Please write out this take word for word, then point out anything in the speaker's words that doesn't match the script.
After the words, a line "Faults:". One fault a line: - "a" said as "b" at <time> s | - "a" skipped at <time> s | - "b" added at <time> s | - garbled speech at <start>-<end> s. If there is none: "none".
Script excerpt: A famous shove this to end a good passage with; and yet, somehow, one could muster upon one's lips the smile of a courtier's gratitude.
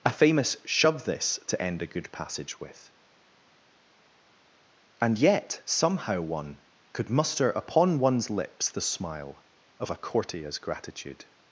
A famous shove this to end a good passage with; and yet, somehow, one could muster upon one's lips the smile of a courtier's gratitude.
Faults:
none